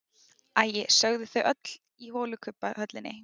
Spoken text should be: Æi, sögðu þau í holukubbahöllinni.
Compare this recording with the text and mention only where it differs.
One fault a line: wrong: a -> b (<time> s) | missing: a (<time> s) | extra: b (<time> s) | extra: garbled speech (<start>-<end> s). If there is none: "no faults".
extra: öll (1.5 s)